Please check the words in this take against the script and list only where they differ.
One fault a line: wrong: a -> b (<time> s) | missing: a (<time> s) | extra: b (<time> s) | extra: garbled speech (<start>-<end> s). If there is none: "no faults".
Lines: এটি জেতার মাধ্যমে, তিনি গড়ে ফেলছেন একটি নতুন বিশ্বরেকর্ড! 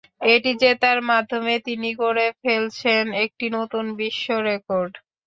no faults